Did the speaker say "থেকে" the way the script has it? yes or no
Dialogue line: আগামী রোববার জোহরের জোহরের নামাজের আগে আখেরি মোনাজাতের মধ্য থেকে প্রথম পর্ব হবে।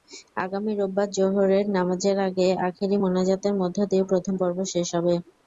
no